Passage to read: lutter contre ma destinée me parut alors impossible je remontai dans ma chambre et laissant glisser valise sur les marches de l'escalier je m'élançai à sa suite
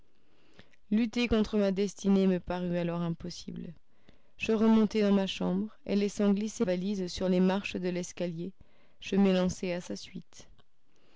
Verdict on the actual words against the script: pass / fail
pass